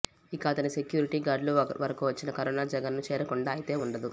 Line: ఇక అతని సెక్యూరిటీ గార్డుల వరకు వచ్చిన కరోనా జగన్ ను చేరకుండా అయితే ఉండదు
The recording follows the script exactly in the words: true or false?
true